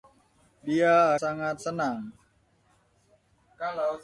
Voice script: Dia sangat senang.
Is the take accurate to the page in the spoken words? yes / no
yes